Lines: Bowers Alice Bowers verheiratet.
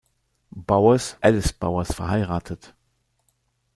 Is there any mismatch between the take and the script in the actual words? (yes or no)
no